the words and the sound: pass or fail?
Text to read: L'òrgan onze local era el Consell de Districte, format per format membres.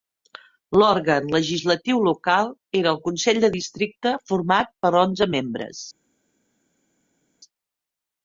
fail